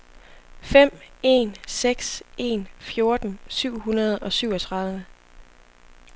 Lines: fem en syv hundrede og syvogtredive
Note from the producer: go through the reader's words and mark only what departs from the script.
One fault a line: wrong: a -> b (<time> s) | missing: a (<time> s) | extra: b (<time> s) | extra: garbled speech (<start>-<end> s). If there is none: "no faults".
extra: seks en fjorten (1.7 s)